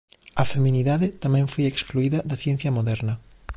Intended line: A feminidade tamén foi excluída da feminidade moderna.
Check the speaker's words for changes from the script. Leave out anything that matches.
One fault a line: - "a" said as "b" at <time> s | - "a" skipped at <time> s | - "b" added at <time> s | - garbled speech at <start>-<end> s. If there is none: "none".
- "feminidade" said as "ciencia" at 2.4 s